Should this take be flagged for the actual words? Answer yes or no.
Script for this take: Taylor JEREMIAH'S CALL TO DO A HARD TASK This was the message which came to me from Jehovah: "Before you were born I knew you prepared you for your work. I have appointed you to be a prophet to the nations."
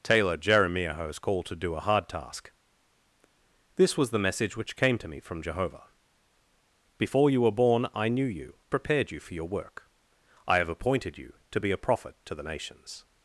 no